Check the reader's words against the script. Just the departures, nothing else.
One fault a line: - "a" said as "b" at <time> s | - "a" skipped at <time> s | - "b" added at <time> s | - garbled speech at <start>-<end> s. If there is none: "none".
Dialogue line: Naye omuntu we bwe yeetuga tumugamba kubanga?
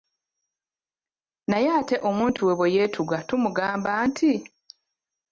- "ate" added at 1.8 s
- "kubanga" said as "nti" at 4.1 s